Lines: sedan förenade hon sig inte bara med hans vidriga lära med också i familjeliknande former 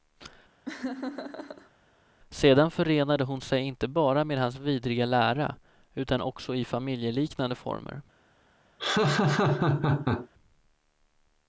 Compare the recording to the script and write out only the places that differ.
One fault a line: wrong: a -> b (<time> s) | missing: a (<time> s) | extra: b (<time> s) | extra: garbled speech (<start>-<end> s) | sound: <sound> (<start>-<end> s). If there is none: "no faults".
sound: laugh (0.7-1.7 s)
wrong: med -> utan (5.9 s)
sound: laugh (8.8-10.3 s)